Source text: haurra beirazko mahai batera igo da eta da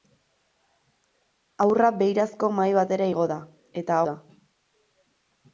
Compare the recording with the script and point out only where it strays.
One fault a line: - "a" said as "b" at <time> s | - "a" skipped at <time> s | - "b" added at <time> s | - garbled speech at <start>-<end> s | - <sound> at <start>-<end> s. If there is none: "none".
none